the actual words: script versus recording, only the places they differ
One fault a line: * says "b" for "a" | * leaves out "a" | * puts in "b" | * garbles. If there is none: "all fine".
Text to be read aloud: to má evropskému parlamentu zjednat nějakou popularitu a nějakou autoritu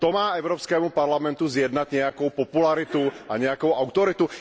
all fine